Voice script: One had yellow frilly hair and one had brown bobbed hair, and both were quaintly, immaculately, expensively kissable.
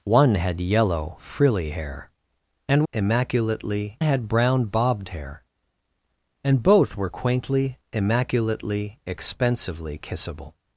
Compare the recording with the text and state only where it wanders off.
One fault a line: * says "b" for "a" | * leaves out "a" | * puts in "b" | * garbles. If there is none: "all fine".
* says "immaculately" for "one"